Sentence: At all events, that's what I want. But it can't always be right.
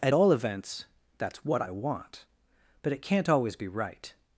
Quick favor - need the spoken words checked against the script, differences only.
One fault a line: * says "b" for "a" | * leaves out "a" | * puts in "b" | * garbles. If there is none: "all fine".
all fine